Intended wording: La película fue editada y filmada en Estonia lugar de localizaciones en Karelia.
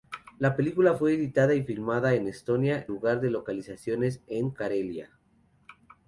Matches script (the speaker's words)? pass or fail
pass